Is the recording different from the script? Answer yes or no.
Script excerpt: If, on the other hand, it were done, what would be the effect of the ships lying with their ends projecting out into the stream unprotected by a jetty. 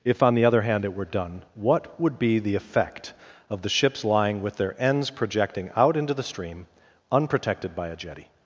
no